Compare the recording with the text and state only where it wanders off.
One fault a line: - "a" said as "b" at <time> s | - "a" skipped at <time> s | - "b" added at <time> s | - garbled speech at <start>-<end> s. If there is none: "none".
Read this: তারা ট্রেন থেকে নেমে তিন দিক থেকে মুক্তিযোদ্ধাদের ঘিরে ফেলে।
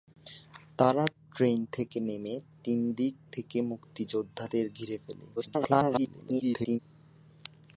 - garbled speech at 5.4-6.8 s